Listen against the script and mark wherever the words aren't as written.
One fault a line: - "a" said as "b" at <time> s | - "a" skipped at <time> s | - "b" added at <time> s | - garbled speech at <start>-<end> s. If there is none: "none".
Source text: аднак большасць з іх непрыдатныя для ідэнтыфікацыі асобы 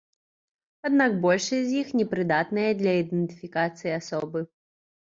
none